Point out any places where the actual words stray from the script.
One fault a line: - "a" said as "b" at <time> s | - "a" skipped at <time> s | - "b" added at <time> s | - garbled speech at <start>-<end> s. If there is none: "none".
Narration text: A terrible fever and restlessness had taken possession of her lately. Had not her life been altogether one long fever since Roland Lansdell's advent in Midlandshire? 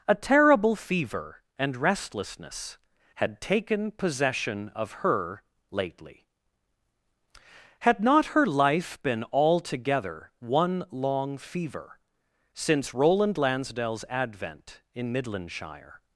none